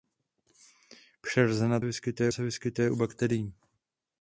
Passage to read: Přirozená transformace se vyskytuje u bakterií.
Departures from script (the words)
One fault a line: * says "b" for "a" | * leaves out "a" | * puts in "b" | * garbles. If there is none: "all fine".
* says "vyskytuje" for "transformace"